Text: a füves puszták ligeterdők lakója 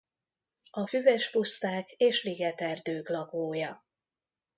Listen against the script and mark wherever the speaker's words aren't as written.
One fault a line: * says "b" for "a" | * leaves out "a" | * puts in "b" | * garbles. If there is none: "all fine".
* puts in "és"